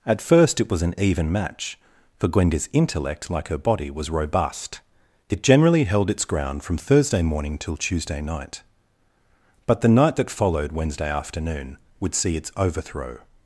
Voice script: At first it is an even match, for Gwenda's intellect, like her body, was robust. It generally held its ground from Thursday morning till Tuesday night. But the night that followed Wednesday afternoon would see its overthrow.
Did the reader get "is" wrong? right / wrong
wrong